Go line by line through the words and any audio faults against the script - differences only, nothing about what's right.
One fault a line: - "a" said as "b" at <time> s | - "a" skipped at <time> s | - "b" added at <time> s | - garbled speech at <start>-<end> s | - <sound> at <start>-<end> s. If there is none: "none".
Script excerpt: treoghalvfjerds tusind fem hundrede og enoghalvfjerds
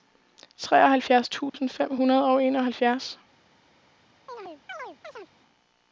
- dropout at 1.5-1.5 s
- chirp at 4.3-5.3 s